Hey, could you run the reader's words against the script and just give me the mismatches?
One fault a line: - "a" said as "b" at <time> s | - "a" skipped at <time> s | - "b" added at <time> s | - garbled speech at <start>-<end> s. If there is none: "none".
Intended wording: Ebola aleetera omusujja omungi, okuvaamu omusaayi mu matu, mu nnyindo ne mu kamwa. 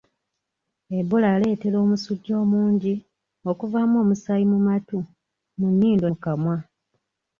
- "ne" skipped at 6.1 s